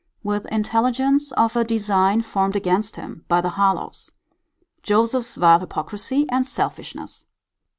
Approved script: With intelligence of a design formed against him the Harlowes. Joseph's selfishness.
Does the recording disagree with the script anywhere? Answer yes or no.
yes